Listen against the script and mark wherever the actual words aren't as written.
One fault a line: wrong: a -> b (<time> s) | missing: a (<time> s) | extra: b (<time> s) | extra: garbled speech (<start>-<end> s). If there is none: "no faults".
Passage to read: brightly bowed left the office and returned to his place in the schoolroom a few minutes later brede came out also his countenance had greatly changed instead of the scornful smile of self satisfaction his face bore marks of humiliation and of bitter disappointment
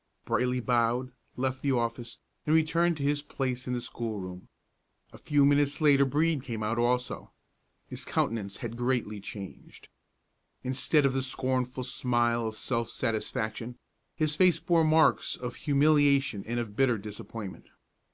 no faults